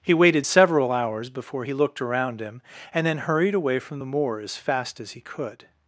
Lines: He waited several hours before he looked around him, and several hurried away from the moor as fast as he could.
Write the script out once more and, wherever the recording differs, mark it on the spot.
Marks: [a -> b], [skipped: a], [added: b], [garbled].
He waited several hours before he looked around him, and [several -> then] hurried away from the moor as fast as he could.